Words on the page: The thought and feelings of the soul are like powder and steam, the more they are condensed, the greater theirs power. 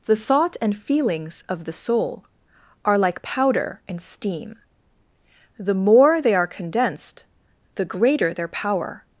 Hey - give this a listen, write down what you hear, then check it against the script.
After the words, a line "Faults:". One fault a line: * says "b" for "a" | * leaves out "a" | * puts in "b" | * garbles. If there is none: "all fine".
The thought and feelings of the soul are like powder and steam, the more they are condensed, the greater their power.
Faults:
* says "their" for "theirs"